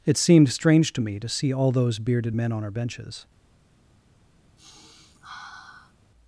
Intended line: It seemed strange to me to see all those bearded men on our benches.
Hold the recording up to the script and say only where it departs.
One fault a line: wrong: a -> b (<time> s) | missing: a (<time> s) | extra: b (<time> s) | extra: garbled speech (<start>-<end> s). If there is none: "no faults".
no faults